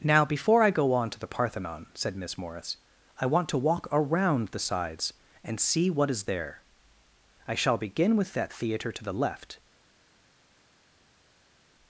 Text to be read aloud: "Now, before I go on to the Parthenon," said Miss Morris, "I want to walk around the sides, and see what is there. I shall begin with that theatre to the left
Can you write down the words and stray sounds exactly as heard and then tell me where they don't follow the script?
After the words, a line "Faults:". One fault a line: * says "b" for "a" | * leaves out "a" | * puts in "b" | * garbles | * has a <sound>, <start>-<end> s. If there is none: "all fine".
"Now, before I go on to the Parthenon," said Miss Morris, "I want to walk around the sides, and see what is there. I shall begin with that theatre to the left
Faults:
all fine